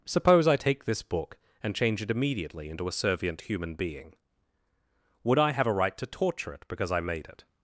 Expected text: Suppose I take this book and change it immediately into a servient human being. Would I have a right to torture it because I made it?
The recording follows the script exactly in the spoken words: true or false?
true